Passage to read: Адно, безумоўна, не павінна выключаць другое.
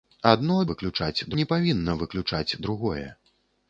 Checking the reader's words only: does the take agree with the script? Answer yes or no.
no